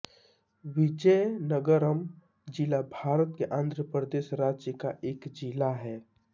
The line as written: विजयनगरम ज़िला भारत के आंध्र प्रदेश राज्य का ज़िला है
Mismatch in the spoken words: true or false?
true